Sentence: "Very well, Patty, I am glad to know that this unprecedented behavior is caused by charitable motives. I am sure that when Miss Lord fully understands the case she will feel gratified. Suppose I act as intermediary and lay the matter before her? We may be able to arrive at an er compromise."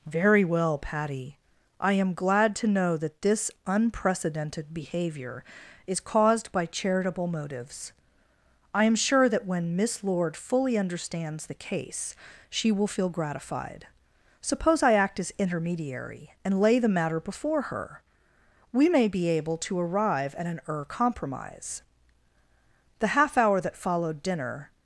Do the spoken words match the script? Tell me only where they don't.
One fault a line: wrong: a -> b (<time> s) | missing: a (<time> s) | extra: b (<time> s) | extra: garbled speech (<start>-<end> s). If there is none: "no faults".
extra: The half hour that followed dinner (23.0 s)